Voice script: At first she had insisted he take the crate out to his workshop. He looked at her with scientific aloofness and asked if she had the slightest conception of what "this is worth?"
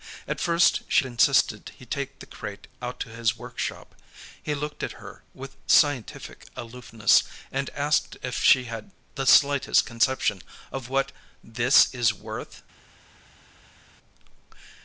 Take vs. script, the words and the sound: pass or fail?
fail